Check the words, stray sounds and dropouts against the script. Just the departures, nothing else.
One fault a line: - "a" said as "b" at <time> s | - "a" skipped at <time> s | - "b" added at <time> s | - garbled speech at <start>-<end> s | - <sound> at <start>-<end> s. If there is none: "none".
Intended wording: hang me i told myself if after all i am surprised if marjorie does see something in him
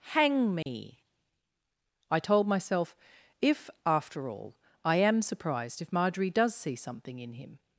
- dropout at 0.6-0.7 s